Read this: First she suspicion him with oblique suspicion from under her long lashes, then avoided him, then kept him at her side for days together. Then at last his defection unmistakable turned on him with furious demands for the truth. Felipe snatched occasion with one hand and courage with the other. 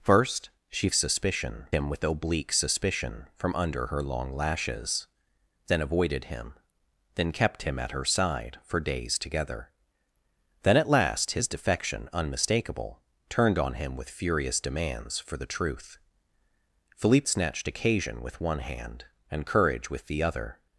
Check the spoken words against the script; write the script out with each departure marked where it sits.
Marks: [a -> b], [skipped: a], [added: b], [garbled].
First she suspicion him with oblique suspicion from under her long lashes, then avoided him, then kept him at her side for days together. Then at last his defection unmistakable turned on him with furious demands for the truth. Felipe snatched occasion with one hand and courage with the other.